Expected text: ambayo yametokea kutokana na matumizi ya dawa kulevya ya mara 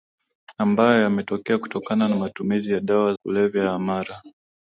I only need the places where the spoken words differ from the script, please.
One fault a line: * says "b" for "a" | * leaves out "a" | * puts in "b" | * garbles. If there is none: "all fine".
all fine